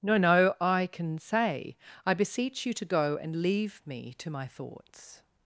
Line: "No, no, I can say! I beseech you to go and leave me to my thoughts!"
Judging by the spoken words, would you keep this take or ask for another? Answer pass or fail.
pass